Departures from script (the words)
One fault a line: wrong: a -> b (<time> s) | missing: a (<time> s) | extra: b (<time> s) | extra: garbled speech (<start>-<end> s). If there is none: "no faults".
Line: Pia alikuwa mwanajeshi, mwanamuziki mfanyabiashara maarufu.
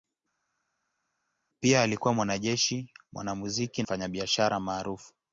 no faults